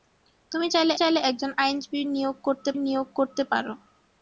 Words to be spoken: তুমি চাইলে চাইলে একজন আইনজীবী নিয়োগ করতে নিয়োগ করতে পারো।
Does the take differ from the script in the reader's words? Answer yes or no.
no